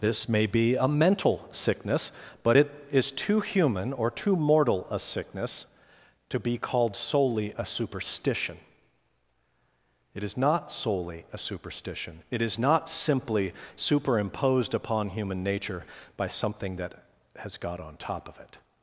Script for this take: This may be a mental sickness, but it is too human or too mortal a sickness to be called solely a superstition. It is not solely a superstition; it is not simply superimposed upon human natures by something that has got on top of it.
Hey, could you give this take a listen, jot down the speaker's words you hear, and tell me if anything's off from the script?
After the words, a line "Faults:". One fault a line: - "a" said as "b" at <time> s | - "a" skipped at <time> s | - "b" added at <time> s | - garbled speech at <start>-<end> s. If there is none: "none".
This may be a mental sickness, but it is too human or too mortal a sickness to be called solely a superstition. It is not solely a superstition; it is not simply superimposed upon human nature by something that has got on top of it.
Faults:
- "natures" said as "nature" at 15.4 s